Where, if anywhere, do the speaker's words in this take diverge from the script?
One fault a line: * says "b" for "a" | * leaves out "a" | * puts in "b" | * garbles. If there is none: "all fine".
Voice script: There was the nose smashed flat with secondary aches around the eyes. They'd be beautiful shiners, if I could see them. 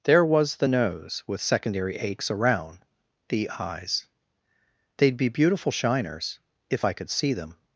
* leaves out "smashed flat"